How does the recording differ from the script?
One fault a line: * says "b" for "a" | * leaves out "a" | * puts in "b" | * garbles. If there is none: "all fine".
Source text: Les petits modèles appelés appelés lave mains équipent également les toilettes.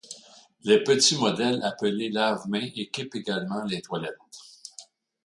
* leaves out "appelés"